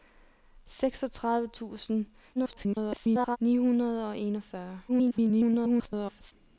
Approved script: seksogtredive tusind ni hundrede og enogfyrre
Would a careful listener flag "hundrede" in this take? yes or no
no